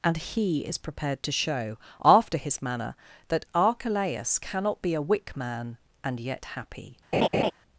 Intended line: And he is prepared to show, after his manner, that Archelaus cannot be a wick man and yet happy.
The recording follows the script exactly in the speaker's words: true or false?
true